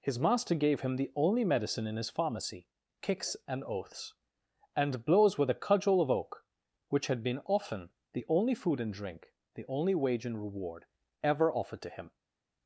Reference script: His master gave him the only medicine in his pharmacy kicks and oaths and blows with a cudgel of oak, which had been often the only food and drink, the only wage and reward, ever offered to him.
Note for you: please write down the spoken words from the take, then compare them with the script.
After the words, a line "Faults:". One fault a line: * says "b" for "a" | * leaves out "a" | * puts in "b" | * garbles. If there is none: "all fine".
His master gave him the only medicine in his pharmacy kicks and oaths and blows with a cudgel of oak, which had been often the only food and drink, the only wage and reward, ever offered to him.
Faults:
all fine